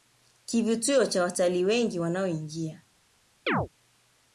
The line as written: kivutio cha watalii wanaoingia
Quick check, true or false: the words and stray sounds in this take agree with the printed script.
false